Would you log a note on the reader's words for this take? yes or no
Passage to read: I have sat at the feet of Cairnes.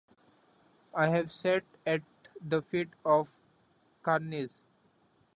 no